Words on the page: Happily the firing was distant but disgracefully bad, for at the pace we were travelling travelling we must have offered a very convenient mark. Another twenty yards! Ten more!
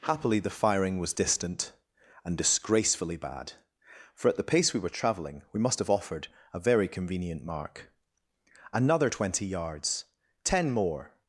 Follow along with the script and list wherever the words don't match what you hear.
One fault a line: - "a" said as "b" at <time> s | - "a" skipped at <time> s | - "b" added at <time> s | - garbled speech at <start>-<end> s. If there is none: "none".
- "but" said as "and" at 2.2 s
- "travelling" skipped at 5.4 s